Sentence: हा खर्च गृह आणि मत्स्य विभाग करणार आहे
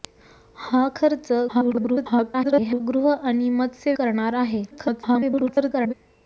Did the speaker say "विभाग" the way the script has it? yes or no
no